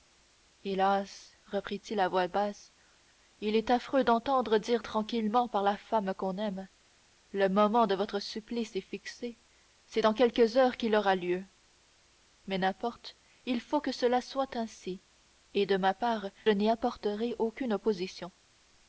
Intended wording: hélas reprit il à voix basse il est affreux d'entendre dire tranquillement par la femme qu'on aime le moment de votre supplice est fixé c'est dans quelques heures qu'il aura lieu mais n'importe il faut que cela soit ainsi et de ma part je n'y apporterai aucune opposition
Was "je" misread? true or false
true